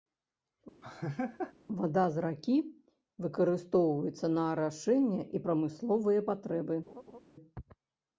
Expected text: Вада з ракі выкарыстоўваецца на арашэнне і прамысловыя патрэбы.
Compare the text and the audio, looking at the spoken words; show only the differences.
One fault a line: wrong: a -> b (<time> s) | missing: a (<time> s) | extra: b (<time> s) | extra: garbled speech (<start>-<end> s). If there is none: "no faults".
no faults